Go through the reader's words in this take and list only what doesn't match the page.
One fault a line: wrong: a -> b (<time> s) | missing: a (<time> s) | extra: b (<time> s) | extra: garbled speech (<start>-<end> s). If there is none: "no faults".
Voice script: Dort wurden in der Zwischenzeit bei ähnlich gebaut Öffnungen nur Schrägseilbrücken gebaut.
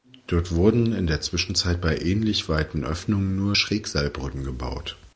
wrong: gebaut -> weiten (2.5 s)